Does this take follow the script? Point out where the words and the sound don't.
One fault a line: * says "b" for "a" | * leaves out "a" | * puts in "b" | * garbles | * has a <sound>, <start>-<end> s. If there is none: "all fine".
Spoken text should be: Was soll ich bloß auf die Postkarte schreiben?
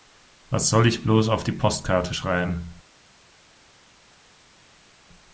all fine